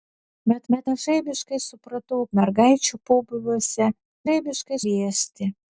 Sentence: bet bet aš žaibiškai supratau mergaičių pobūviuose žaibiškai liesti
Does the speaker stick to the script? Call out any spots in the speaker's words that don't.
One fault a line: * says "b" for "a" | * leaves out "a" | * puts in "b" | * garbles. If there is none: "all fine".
all fine